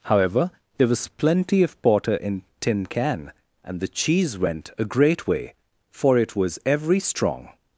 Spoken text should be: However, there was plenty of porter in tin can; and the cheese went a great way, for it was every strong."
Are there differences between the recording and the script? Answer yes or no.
no